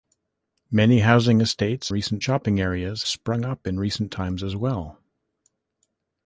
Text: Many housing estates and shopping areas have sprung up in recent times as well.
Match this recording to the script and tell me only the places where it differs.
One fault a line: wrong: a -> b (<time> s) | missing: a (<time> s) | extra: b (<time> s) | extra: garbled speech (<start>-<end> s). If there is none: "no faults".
wrong: and -> recent (1.9 s)
missing: have (3.0 s)